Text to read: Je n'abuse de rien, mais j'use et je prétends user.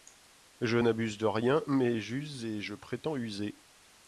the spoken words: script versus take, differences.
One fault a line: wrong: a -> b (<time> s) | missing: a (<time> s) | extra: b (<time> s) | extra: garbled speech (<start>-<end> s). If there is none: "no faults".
no faults